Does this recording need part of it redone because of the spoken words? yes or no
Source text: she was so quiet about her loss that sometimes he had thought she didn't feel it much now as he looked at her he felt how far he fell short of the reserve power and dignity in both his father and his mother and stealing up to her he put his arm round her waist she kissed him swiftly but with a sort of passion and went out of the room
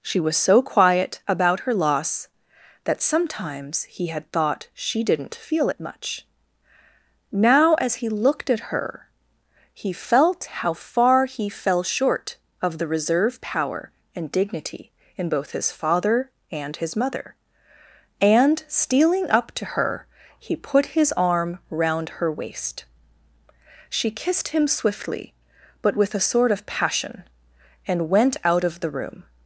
no